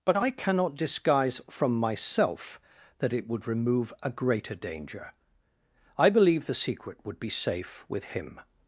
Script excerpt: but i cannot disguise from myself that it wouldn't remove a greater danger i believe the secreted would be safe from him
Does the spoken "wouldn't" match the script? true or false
false